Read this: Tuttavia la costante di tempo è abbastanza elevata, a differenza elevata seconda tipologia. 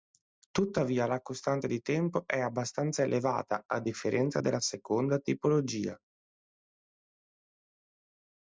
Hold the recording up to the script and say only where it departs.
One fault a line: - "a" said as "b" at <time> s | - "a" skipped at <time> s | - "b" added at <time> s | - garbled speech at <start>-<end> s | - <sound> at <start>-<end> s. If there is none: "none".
- "elevata" said as "della" at 4.4 s